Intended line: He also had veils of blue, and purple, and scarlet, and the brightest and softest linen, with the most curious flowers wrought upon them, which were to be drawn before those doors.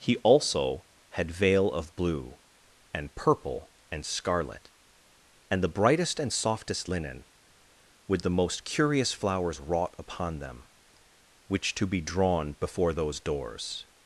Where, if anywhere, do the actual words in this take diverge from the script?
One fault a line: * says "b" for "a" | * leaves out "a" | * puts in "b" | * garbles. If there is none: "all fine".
* says "veil" for "veils"
* leaves out "were"